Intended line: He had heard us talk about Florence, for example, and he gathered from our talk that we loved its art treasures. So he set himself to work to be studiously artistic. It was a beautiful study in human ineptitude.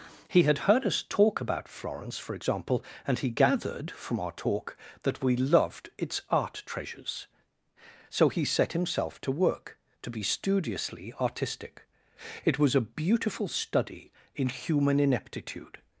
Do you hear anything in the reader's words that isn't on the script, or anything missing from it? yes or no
no